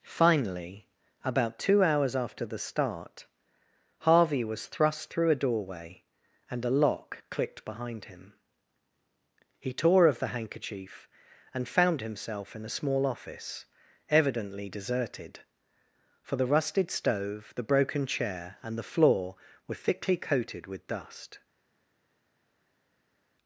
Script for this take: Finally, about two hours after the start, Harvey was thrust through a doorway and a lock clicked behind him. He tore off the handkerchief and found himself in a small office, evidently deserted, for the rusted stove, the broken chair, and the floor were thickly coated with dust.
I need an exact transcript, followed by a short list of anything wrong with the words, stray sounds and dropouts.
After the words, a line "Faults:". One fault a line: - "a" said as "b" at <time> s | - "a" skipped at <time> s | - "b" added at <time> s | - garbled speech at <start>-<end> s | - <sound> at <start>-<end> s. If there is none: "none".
Finally, about two hours after the start, Harvey was thrust through a doorway and a lock clicked behind him. He tore of the handkerchief and found himself in a small office, evidently deserted, for the rusted stove, the broken chair, and the floor were thickly coated with dust.
Faults:
- "off" said as "of" at 10.1 s